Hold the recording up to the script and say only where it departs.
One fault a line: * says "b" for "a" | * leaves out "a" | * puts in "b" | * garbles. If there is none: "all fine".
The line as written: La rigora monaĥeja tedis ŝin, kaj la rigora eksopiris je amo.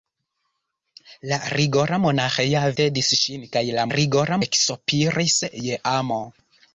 all fine